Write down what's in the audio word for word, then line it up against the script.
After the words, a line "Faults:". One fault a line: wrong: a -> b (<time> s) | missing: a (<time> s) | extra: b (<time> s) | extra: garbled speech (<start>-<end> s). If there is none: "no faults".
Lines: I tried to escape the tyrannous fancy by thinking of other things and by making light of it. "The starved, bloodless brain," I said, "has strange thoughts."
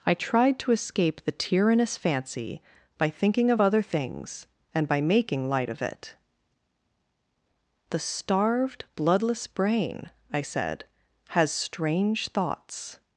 I tried to escape the tyrannous fancy by thinking of other things and by making light of it. "The starved, bloodless brain," I said, "has strange thoughts."
Faults:
no faults